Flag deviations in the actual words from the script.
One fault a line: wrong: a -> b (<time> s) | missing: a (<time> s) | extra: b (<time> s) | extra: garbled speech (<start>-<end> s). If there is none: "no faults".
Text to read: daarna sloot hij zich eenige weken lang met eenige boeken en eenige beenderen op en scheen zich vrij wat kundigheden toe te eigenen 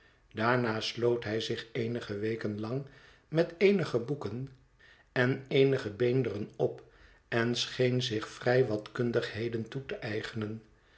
no faults